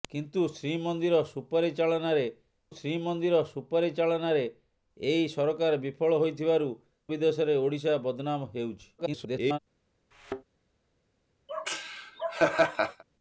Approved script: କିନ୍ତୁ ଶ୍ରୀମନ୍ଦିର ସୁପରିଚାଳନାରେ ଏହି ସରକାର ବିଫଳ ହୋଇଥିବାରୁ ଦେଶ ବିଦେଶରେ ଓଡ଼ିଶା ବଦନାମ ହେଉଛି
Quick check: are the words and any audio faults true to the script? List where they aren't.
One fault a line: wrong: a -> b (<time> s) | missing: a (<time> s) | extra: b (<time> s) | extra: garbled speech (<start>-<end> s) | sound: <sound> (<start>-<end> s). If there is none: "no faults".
extra: ଶ୍ରୀମନ୍ଦିର ସୁପରିଚାଳନାରେ (2.7 s)
missing: ଦେଶ (6.7 s)
extra: garbled speech (9.0-9.6 s)
sound: thud (10.1-10.4 s)
sound: laugh (11.5-13.0 s)